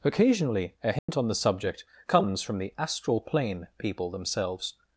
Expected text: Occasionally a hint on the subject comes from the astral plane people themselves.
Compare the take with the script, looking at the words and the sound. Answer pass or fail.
fail